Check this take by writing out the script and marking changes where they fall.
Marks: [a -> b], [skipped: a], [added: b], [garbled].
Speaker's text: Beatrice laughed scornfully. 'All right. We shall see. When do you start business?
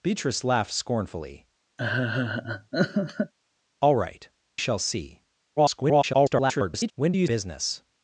Beatrice laughed scornfully. 'All right. [skipped: We] shall see. [garbled] When do you [skipped: start] business?